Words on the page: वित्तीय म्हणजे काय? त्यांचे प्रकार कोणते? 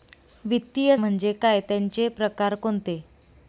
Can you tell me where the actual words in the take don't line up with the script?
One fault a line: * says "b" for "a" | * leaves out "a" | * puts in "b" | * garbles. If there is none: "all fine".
all fine